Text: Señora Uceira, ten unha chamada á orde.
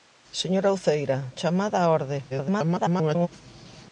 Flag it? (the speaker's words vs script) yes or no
yes